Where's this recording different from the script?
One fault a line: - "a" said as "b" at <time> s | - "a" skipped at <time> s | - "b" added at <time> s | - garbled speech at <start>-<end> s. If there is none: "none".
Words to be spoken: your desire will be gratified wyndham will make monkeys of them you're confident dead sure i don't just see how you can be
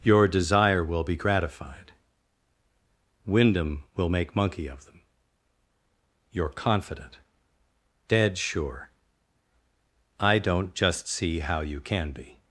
- "monkeys" said as "monkey" at 4.3 s